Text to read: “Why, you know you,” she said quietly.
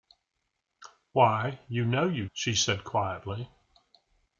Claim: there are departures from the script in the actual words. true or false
false